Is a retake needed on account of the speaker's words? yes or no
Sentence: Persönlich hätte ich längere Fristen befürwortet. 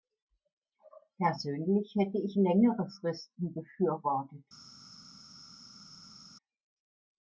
no